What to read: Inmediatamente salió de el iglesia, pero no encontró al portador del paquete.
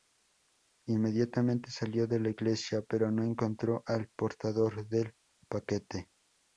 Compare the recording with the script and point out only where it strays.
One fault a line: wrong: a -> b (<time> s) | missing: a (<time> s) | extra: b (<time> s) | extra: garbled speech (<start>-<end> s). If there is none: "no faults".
wrong: el -> la (2.2 s)